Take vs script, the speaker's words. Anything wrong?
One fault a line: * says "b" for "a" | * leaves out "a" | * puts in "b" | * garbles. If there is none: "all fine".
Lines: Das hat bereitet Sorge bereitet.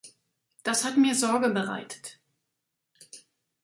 * says "mir" for "bereitet"